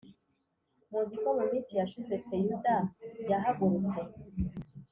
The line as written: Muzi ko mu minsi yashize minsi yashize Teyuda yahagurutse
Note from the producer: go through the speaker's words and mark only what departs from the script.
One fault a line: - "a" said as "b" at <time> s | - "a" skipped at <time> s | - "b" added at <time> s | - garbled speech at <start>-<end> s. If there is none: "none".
- "minsi yashize" skipped at 2.1 s